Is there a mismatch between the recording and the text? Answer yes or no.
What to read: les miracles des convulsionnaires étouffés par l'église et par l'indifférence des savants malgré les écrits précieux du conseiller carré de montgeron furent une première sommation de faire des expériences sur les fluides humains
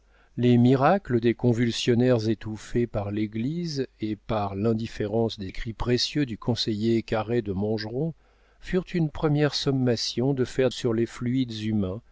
yes